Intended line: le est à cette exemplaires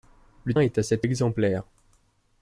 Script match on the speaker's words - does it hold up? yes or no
yes